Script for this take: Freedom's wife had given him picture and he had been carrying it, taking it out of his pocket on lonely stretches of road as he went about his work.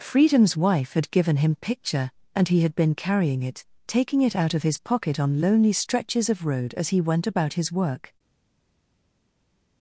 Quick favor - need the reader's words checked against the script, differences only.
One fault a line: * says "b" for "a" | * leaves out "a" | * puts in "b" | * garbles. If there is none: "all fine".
all fine